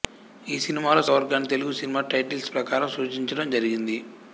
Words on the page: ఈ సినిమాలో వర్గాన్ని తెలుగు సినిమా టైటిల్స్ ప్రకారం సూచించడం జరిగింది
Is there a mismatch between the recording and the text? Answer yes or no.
no